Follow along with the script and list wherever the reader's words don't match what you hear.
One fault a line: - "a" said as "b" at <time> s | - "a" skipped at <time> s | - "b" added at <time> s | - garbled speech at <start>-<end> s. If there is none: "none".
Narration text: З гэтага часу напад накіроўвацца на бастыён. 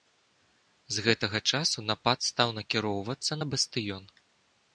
- "стаў" added at 2.3 s